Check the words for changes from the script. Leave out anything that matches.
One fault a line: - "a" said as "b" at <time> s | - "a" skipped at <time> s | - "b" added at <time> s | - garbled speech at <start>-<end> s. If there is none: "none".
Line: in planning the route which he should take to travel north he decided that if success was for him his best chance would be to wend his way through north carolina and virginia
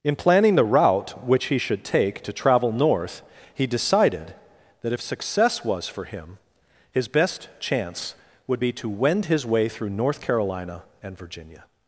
none